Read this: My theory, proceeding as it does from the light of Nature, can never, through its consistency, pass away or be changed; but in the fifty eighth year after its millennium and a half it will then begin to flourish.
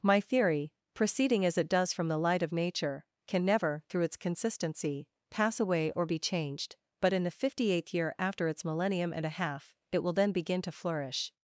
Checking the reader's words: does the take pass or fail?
pass